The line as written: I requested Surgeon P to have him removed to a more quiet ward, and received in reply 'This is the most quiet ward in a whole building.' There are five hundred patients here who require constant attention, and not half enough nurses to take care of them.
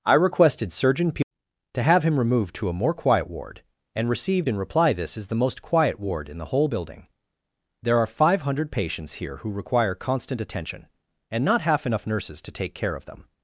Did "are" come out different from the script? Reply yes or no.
no